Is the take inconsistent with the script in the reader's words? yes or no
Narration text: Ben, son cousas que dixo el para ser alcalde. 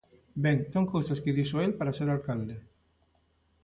no